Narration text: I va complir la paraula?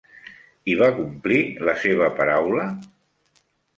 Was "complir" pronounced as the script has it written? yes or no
yes